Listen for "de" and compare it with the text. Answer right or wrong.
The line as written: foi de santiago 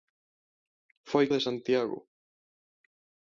right